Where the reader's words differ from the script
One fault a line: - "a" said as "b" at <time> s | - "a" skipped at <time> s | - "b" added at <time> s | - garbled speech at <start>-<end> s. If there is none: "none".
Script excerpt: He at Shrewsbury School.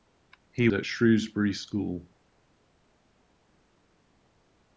none